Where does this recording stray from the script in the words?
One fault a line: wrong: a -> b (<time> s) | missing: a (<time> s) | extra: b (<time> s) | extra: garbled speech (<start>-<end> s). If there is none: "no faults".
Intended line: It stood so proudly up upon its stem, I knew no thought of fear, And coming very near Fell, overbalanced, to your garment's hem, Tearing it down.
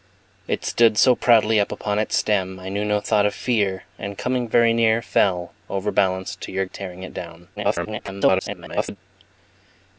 missing: garment's hem (6.6 s)
extra: garbled speech (7.6-9.0 s)